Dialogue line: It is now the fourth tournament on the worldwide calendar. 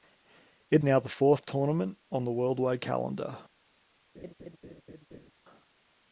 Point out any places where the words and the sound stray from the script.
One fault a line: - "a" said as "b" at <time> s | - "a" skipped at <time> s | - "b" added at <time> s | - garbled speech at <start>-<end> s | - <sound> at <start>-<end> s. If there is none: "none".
- "is" skipped at 0.8 s
- laugh at 4.1-5.3 s